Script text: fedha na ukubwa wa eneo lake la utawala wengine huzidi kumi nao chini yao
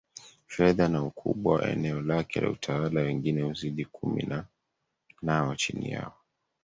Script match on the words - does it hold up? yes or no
yes